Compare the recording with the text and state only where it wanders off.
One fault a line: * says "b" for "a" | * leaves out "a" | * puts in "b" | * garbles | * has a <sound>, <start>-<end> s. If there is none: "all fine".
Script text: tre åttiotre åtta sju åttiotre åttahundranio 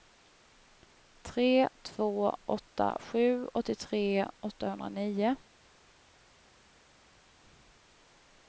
* says "två" for "åttiotre"